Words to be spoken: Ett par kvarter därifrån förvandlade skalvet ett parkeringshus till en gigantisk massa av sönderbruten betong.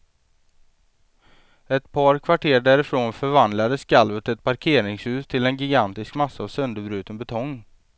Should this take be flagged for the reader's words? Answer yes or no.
no